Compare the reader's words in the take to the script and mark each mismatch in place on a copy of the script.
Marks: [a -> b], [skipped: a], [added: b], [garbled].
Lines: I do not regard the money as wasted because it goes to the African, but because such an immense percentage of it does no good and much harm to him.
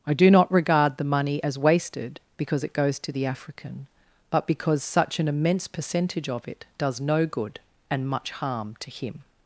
I do not regard the money as wasted because it goes to the African, but because such an immense percentage of it does no good and much harm to him.